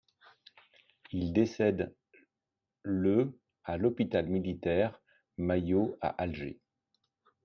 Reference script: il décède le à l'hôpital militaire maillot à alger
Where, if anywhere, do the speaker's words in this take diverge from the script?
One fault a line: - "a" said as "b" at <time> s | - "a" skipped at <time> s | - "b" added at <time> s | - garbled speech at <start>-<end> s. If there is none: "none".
none